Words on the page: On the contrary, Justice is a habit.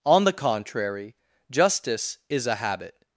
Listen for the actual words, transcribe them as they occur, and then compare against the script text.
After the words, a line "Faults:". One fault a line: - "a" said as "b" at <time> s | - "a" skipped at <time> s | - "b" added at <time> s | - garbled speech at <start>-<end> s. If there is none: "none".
On the contrary, Justice is a habit.
Faults:
none